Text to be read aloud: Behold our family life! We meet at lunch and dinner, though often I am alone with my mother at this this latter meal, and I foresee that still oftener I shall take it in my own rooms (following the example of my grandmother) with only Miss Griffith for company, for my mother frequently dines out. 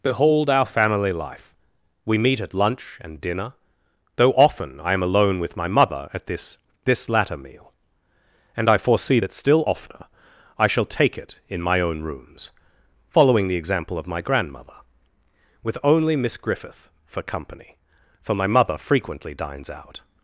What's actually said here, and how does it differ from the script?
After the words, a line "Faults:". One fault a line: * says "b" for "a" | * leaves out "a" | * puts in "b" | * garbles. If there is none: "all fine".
Behold our family life! We meet at lunch and dinner, though often I am alone with my mother at this this latter meal, and I foresee that still oftener I shall take it in my own rooms (following the example of my grandmother) with only Miss Griffith for company, for my mother frequently dines out.
Faults:
all fine